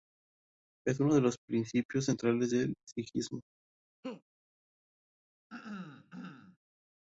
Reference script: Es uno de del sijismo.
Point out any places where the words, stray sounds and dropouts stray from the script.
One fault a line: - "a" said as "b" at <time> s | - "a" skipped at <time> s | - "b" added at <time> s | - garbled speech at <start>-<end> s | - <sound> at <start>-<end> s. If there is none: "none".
- "los principios centrales" added at 1.2 s
- laugh at 4.0-4.2 s
- throat clearing at 5.5-6.6 s